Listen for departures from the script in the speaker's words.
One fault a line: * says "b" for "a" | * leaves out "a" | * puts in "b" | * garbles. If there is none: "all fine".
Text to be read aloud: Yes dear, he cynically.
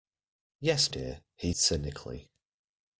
all fine